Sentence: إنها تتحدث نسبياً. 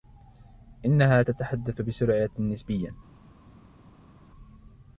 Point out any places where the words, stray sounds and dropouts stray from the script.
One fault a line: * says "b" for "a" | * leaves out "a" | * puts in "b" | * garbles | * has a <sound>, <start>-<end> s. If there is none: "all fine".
* puts in "بسرعة"